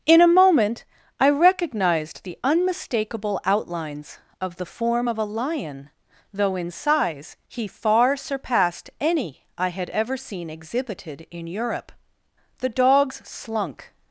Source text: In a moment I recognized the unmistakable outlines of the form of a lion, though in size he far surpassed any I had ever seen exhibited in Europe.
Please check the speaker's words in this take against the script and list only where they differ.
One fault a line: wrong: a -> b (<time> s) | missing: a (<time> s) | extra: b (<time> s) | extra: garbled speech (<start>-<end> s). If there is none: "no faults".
extra: The dogs slunk (12.6 s)